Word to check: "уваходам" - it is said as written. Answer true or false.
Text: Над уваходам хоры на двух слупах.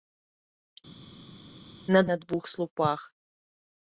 false